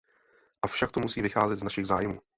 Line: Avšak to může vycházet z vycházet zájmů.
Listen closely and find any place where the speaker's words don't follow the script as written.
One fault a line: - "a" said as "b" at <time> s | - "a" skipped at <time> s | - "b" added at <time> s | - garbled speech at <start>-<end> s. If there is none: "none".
- "může" said as "musí" at 1.0 s
- "vycházet" said as "našich" at 1.6 s